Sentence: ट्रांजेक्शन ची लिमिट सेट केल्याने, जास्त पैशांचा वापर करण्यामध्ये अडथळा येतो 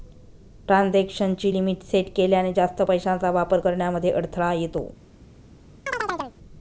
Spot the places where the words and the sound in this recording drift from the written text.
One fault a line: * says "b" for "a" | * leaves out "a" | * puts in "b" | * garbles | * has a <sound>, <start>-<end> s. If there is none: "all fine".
* has a chirp, 5.9-6.4 s